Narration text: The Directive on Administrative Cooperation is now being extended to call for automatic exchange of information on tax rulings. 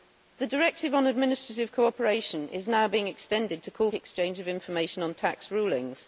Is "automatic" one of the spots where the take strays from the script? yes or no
yes